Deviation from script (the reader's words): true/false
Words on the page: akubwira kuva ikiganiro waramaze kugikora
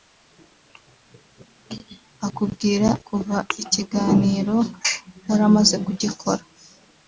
false